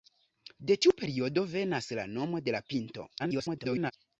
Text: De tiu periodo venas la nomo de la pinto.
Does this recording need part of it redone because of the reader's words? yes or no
yes